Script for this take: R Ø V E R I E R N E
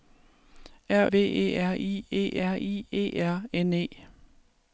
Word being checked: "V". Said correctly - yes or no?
no